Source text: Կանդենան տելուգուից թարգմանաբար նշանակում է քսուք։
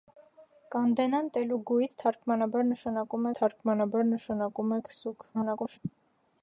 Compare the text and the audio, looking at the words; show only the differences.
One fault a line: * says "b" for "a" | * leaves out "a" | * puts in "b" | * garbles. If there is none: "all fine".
* puts in "թարգմանաբար նշանակում"
* garbles